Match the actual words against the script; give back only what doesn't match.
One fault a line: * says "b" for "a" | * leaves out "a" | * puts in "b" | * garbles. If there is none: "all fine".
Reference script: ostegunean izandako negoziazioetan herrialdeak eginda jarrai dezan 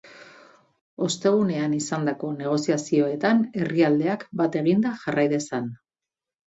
* puts in "bat"